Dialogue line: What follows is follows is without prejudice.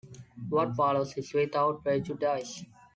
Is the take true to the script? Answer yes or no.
no